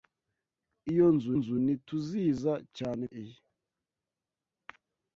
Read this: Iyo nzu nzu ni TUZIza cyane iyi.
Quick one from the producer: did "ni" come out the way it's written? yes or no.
yes